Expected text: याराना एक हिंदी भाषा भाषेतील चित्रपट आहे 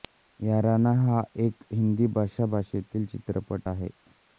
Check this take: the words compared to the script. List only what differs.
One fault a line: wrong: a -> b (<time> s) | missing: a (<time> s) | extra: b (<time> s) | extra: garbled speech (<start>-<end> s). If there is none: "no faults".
extra: हा (1.0 s)